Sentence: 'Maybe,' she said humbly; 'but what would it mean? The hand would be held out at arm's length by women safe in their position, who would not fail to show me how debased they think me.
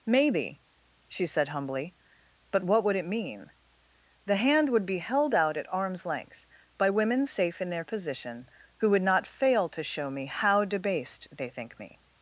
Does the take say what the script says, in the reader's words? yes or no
yes